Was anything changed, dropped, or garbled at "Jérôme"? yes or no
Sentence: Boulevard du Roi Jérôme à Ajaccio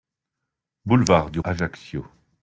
yes